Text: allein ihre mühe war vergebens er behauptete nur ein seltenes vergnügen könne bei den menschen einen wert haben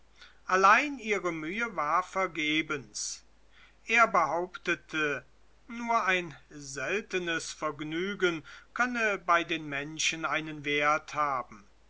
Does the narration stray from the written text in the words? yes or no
no